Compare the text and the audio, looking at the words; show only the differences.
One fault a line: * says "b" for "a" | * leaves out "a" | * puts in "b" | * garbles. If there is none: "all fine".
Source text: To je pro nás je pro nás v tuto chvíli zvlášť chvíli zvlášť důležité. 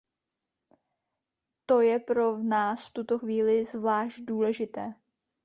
* leaves out "je pro nás"
* leaves out "chvíli zvlášť"